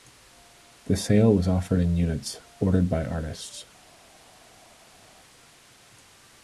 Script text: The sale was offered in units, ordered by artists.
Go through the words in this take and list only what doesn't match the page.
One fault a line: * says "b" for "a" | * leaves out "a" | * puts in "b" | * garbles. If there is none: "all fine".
all fine